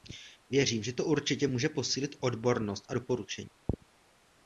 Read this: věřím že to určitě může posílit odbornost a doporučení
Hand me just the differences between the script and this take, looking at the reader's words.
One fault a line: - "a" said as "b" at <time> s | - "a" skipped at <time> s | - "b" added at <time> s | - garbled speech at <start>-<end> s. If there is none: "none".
none